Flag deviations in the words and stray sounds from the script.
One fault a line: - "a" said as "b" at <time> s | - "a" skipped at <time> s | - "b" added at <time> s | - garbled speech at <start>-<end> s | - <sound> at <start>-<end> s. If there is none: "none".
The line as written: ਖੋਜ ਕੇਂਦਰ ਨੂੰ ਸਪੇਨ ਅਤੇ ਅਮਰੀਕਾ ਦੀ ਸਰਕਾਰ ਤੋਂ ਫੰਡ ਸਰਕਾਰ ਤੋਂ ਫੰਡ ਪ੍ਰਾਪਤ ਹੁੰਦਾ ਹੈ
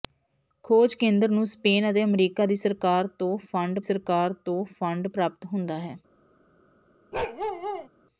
- bark at 7.1-7.9 s